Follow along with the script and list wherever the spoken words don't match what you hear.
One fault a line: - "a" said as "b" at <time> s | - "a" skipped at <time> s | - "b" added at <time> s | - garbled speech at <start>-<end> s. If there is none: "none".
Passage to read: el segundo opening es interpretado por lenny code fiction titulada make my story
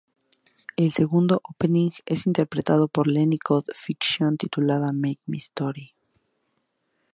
none